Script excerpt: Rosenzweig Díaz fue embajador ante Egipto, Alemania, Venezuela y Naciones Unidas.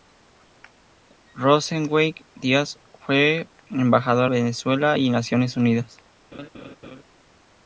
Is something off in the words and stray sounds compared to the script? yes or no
yes